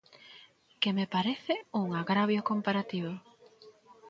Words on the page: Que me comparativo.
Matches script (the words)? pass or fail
fail